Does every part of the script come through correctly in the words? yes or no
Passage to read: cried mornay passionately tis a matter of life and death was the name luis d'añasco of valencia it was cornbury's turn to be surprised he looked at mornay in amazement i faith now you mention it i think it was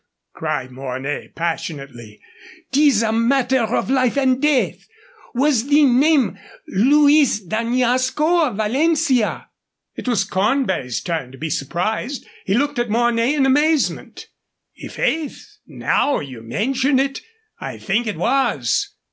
yes